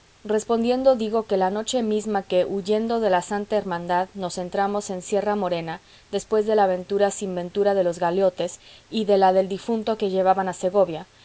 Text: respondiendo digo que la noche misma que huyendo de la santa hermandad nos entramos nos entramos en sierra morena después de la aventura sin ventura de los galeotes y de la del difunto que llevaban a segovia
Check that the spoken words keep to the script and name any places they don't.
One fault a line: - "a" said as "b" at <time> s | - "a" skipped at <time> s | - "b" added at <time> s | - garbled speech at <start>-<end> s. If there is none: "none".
- "nos entramos" skipped at 4.9 s